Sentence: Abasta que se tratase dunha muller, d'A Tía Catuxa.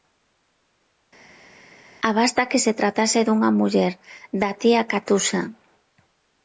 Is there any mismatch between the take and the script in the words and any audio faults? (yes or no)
no